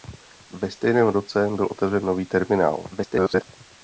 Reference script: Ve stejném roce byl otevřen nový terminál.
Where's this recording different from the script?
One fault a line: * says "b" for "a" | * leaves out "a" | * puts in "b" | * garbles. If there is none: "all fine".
* garbles